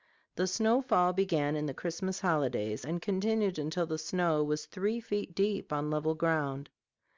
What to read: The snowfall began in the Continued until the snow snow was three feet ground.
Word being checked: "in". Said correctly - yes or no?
yes